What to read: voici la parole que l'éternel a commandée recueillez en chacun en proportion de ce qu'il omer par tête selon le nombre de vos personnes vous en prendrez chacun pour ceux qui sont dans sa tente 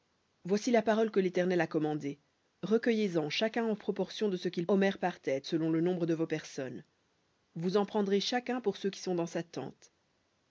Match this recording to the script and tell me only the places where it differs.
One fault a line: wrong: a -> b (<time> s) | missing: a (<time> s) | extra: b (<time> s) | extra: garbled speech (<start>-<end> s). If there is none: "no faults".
no faults